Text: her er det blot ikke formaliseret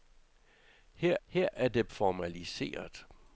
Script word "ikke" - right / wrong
wrong